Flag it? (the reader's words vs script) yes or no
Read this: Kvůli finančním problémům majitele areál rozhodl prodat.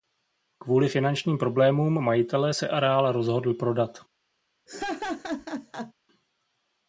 yes